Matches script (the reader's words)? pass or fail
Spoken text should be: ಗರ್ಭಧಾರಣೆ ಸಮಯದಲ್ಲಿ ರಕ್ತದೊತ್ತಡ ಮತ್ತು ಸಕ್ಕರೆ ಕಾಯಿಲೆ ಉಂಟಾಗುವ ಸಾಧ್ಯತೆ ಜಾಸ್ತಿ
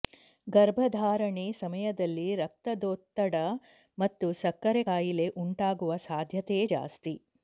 pass